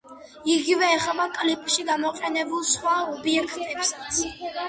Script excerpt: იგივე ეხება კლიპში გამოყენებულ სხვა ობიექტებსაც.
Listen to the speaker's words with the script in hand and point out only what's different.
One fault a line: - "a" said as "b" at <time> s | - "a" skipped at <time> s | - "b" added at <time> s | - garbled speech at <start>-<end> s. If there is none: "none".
none